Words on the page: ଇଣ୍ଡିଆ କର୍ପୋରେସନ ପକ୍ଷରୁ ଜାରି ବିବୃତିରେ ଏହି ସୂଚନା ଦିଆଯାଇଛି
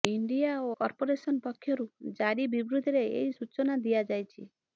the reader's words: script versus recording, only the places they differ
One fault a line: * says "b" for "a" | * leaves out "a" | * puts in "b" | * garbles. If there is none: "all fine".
all fine